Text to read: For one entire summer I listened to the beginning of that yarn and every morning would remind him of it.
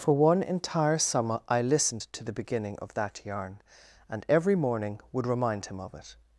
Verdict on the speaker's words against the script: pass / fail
pass